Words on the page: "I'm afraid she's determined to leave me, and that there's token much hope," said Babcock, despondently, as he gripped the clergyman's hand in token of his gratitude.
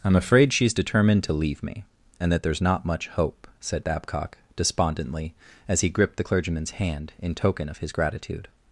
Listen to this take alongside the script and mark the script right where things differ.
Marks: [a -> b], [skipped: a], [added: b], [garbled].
"I'm afraid she's determined to leave me, and that there's [token -> not] much hope," said Babcock, despondently, as he gripped the clergyman's hand in token of his gratitude.